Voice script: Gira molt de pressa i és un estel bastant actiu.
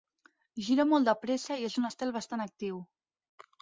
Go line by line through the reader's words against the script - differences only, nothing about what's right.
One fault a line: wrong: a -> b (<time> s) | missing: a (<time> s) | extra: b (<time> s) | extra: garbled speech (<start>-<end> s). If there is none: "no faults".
no faults